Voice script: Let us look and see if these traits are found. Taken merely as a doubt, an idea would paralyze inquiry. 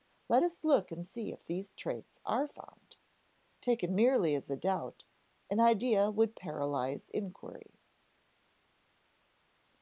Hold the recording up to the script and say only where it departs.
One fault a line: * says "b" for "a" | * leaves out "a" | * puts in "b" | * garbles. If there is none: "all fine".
all fine